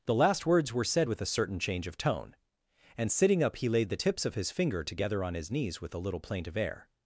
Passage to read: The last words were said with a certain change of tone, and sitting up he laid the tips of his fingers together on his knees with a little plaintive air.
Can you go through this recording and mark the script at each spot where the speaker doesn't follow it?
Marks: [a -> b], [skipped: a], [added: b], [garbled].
The last words were said with a certain change of tone, and sitting up he laid the tips of his [fingers -> finger] together on his knees with a little plaintive air.